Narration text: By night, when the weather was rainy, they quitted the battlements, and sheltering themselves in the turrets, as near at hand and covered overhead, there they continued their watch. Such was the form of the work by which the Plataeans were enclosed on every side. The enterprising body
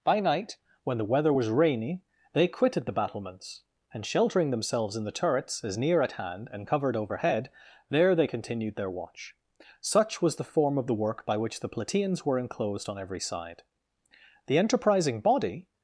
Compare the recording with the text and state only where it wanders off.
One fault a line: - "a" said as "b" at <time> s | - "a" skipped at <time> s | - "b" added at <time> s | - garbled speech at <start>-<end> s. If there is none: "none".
none